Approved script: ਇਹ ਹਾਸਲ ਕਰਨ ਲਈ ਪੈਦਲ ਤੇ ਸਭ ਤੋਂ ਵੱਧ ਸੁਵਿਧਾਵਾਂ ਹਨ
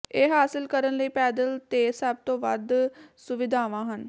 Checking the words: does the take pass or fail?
pass